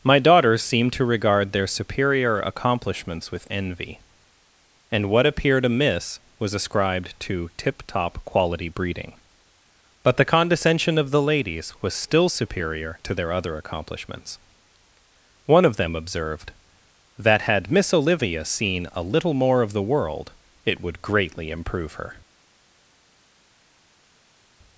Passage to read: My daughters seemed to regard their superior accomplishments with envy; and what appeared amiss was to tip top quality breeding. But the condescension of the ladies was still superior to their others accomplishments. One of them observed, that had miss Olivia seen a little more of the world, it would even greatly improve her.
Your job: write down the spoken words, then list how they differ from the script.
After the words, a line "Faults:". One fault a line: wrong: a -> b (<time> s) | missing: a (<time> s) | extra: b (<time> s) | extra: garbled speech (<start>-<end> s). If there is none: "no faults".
My daughters seemed to regard their superior accomplishments with envy; and what appeared amiss was ascribed to tip top quality breeding. But the condescension of the ladies was still superior to their other accomplishments. One of them observed, that had miss Olivia seen a little more of the world, it would greatly improve her.
Faults:
extra: ascribed (6.5 s)
wrong: others -> other (13.3 s)
missing: even (21.0 s)